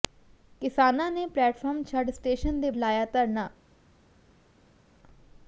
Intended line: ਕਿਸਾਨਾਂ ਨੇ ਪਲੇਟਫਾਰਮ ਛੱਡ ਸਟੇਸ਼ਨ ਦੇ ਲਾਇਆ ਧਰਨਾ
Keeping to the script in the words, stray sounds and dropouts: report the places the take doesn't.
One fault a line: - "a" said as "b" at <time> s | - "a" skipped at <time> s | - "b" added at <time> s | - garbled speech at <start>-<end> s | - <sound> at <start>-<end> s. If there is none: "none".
none